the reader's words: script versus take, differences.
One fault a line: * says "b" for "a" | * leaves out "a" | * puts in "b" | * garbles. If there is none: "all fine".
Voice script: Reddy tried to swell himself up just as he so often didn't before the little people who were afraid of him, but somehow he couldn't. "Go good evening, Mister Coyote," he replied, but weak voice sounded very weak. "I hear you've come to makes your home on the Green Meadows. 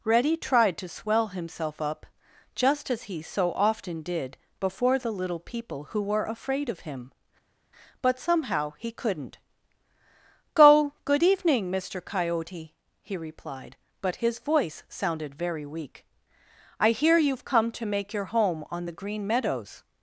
* says "did" for "didn't"
* says "his" for "weak"
* says "make" for "makes"